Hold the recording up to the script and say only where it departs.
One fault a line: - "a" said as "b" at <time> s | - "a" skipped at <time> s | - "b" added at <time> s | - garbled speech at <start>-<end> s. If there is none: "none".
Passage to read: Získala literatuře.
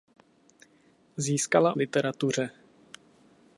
none